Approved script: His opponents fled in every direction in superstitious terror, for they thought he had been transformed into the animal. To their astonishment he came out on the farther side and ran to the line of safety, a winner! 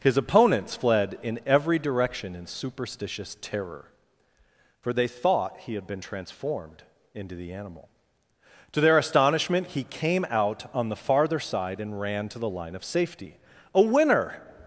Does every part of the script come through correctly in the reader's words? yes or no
yes